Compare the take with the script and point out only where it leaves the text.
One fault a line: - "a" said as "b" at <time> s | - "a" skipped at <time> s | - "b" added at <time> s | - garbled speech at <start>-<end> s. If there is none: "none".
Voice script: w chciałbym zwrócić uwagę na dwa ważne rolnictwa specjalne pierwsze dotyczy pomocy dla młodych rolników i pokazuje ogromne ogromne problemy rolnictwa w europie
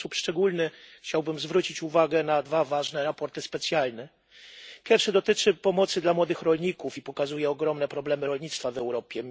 - "sposób szczególny" added at 0.0 s
- "rolnictwa" said as "sprawozdania" at 3.1 s
- "ogromne" skipped at 7.9 s